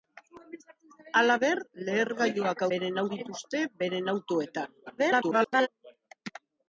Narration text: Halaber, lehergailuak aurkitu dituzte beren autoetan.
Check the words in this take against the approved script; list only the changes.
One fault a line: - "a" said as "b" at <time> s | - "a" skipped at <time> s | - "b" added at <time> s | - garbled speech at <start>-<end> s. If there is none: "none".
- "aurkitu" said as "beren" at 2.7 s
- garbled speech at 4.9-5.7 s